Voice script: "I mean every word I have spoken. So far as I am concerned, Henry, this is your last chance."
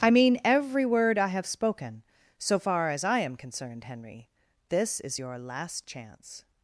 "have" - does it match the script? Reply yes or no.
yes